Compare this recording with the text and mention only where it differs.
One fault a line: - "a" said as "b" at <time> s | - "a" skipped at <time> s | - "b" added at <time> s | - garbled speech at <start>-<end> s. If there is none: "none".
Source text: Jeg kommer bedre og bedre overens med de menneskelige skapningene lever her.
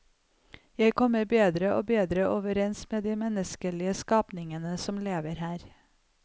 - "som" added at 4.8 s